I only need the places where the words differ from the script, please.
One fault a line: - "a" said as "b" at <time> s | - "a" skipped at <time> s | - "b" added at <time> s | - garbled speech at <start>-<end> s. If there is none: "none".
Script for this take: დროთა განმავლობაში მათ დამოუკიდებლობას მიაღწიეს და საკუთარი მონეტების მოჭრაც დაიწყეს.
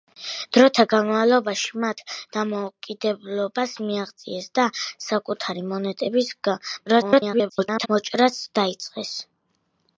- garbled speech at 6.9-7.9 s